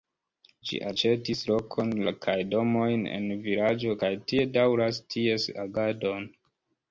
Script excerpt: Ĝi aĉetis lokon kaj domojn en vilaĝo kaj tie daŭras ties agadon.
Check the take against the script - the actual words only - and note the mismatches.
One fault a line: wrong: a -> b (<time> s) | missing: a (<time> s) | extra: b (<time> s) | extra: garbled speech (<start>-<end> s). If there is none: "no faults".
no faults